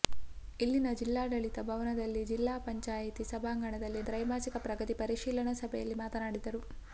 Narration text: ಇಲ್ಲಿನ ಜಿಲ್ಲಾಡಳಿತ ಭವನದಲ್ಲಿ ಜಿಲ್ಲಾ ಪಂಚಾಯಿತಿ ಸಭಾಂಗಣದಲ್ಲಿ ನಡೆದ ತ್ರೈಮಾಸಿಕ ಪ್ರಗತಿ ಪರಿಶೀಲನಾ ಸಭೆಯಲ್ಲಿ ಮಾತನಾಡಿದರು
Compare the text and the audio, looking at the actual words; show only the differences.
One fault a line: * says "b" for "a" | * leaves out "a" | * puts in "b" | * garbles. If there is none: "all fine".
* leaves out "ನಡೆದ"